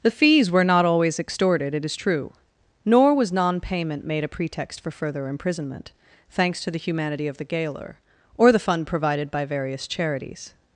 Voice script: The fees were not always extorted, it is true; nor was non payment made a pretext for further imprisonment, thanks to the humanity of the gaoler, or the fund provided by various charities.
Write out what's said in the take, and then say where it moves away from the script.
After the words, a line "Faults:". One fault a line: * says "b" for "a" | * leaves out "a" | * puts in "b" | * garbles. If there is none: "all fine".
The fees were not always extorted, it is true; nor was non payment made a pretext for further imprisonment, thanks to the humanity of the gaoler, or the fund provided by various charities.
Faults:
all fine